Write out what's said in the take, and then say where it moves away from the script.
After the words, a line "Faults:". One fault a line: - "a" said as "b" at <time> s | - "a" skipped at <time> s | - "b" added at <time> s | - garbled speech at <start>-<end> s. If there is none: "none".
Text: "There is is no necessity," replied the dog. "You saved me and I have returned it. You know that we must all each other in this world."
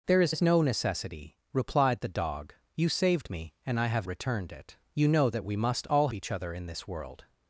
"There is is no necessity," replied the dog. "You saved me and I have returned it. You know that we must all each other in this world."
Faults:
none